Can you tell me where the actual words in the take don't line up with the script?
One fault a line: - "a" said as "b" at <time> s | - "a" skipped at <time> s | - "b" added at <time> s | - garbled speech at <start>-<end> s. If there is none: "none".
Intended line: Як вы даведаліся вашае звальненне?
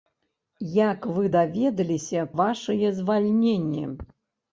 none